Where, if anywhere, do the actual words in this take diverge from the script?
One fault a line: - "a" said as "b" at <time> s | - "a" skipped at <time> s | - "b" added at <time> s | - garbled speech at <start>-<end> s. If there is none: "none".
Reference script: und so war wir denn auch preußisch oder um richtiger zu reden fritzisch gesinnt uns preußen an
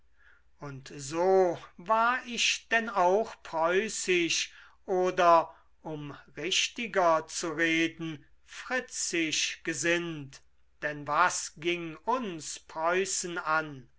- "wir" said as "ich" at 2.2 s
- "denn was ging" added at 10.8 s